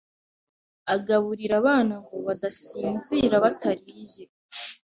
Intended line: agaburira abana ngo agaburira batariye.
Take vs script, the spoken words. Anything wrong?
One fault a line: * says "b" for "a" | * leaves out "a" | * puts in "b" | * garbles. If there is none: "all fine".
* says "badasinzira" for "agaburira"